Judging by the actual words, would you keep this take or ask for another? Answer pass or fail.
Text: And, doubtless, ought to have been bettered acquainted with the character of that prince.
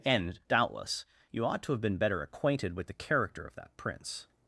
fail